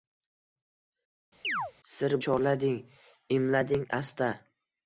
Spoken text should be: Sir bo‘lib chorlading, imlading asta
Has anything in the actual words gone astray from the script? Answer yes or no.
yes